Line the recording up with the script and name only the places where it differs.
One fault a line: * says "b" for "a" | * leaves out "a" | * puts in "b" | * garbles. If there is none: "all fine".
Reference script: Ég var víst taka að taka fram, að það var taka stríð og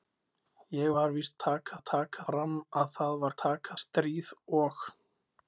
all fine